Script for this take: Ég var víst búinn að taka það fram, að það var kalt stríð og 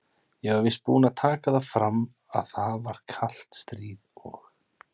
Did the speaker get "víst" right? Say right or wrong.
right